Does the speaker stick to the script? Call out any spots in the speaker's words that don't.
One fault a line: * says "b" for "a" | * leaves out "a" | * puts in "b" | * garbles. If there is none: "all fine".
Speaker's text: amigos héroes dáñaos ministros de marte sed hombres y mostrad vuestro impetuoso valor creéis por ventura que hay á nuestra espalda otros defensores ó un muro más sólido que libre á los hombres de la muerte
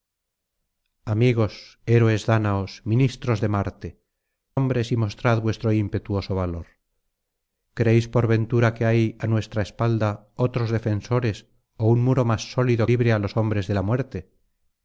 * leaves out "sed"
* leaves out "que"